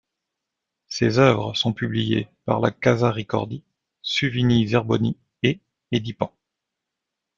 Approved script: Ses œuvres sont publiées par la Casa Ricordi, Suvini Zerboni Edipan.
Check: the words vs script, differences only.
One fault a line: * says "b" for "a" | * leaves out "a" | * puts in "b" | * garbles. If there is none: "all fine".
* puts in "et"